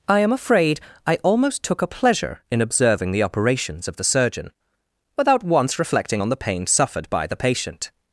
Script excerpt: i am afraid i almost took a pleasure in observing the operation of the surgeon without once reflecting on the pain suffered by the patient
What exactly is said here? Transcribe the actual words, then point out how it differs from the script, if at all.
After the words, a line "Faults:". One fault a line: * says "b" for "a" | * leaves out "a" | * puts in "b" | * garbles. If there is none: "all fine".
i am afraid i almost took a pleasure in observing the operations of the surgeon without once reflecting on the pain suffered by the patient
Faults:
* says "operations" for "operation"